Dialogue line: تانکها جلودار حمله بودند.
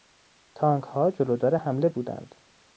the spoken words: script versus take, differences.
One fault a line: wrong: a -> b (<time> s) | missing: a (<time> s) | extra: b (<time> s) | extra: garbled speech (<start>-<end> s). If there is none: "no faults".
no faults